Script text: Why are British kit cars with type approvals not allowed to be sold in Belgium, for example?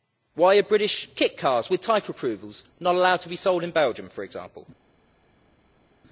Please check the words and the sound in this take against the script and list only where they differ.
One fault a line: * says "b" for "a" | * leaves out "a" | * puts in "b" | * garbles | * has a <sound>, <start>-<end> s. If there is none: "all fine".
all fine